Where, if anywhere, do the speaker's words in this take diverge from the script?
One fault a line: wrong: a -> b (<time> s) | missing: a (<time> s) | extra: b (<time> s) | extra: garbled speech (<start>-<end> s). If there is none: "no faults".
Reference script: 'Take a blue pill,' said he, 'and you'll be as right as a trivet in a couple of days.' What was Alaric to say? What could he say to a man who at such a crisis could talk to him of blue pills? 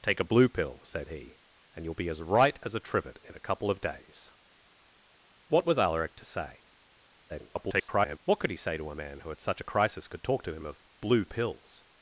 extra: garbled speech (7.3-8.2 s)